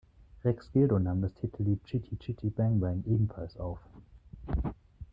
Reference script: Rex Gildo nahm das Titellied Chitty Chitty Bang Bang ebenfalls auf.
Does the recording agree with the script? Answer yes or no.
yes